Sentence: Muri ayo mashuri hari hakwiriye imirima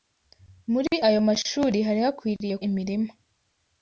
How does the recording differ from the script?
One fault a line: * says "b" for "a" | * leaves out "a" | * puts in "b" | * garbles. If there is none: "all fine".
all fine